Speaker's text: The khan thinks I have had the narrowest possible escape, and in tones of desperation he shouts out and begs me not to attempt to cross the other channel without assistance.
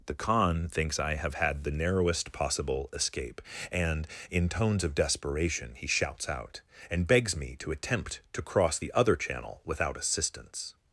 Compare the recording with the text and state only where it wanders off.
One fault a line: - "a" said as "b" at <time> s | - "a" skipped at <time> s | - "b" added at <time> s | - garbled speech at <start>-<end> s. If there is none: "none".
- "not" skipped at 7.5 s